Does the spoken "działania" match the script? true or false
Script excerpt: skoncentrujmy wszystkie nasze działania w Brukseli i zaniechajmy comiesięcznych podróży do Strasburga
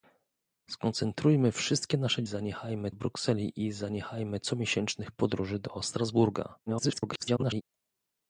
false